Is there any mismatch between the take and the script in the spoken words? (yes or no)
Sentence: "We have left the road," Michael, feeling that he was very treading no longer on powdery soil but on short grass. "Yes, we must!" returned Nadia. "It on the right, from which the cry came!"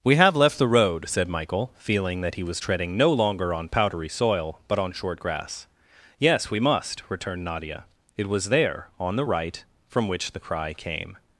yes